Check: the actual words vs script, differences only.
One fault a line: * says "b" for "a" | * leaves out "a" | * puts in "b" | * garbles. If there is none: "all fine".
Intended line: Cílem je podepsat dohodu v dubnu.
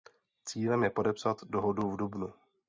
all fine